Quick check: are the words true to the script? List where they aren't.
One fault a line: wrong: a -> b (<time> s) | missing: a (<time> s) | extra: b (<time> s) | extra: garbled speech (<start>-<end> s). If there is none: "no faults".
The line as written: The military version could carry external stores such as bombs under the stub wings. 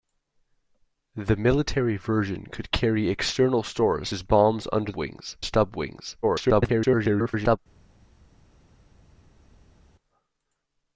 missing: such (4.1 s)
wrong: the -> wings (5.0 s)
extra: garbled speech (6.2-7.6 s)